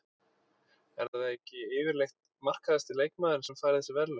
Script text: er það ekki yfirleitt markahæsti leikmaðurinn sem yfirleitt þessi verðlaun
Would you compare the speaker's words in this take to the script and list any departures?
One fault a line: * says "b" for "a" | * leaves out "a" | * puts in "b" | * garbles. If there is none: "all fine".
* says "fær" for "yfirleitt"